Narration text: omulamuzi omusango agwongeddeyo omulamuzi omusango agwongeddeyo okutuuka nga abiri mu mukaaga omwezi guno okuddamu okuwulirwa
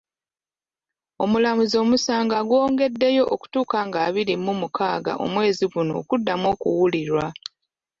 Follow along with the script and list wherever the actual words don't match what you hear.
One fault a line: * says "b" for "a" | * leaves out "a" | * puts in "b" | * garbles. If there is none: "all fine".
* leaves out "omulamuzi omusango agwongeddeyo"